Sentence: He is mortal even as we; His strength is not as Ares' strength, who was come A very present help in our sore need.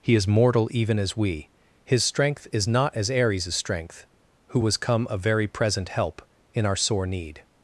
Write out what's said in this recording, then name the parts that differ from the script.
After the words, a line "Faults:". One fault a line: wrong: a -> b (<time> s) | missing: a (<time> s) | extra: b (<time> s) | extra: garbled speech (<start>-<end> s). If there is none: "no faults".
He is mortal even as we; His strength is not as Ares' strength, who was come A very present help in our sore need.
Faults:
no faults